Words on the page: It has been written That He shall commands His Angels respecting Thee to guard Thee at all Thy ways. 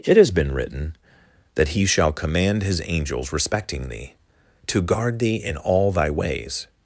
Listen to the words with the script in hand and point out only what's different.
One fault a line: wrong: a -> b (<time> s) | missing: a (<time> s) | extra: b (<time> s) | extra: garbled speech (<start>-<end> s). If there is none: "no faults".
wrong: commands -> command (2.1 s)
wrong: at -> in (5.3 s)